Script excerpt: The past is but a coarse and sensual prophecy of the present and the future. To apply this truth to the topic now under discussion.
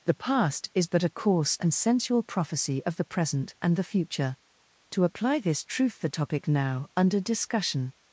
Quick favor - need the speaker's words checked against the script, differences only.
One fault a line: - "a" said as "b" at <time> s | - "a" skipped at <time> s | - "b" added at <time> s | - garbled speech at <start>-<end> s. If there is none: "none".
- "to" skipped at 6.0 s